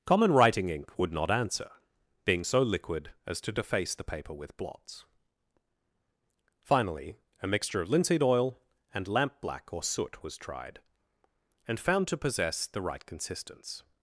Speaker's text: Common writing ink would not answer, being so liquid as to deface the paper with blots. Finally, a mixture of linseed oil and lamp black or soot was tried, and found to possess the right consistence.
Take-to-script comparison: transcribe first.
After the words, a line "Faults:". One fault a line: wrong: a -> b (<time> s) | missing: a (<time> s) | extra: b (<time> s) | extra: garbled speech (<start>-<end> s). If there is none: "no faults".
Common writing ink would not answer, being so liquid as to deface the paper with blots. Finally, a mixture of linseed oil and lamp black or soot was tried, and found to possess the right consistence.
Faults:
no faults